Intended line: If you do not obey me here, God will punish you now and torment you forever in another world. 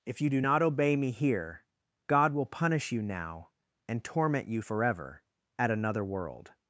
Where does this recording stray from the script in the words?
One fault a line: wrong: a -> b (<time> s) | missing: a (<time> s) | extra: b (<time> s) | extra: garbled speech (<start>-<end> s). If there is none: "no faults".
wrong: in -> at (5.6 s)